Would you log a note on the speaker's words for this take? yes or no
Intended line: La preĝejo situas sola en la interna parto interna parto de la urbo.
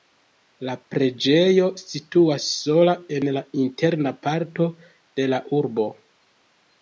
yes